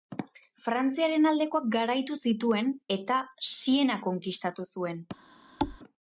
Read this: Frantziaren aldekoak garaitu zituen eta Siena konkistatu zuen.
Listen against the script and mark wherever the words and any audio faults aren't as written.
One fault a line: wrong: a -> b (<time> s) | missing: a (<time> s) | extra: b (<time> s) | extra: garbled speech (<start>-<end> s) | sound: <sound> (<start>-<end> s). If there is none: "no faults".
sound: thud (5.6-5.8 s)